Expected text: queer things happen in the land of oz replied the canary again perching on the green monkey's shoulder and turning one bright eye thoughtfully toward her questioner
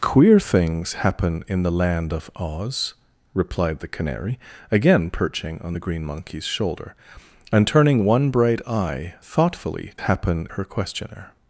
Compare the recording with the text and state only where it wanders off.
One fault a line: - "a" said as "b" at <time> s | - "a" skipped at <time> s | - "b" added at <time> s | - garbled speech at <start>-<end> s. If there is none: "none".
- "toward" said as "happen" at 10.0 s